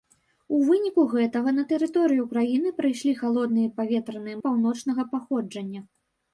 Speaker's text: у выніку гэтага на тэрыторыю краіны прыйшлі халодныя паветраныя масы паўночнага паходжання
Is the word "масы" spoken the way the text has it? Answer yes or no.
no